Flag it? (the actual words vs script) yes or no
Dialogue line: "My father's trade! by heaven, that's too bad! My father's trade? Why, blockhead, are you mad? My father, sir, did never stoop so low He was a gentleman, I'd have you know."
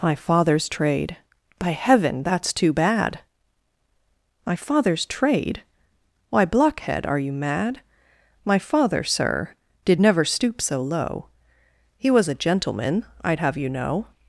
no